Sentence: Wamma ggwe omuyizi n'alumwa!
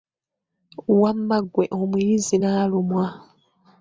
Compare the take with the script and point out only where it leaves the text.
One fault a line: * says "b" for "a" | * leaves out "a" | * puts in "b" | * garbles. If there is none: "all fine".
all fine